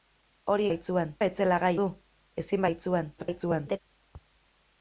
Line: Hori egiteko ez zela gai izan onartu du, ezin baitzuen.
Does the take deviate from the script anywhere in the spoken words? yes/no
yes